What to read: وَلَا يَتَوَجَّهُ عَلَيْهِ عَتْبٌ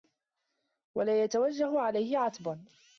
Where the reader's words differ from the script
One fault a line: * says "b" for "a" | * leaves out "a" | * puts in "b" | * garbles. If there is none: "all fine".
all fine